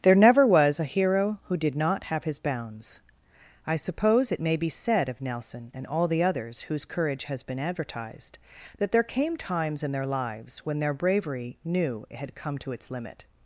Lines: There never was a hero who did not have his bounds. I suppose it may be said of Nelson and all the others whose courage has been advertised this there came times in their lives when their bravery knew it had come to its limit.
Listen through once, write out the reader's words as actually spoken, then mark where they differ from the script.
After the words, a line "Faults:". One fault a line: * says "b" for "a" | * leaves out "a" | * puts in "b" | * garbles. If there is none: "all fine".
There never was a hero who did not have his bounds. I suppose it may be said of Nelson and all the others whose courage has been advertised that there came times in their lives when their bravery knew it had come to its limit.
Faults:
* says "that" for "this"